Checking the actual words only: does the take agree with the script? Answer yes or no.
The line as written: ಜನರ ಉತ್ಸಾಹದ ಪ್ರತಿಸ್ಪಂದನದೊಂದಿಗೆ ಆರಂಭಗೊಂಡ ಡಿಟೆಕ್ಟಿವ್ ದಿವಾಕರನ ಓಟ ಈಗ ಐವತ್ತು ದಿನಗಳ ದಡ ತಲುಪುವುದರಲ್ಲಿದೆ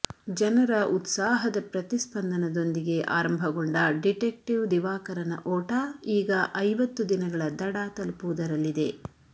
yes